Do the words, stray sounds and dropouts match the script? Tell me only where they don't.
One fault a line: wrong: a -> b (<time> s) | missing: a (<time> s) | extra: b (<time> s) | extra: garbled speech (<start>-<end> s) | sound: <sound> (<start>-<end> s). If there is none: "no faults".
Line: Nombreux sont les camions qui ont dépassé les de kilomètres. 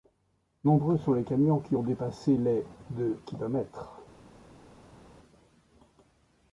no faults